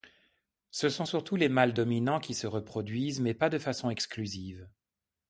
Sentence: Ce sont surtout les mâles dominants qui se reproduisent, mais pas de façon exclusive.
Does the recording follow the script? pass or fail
pass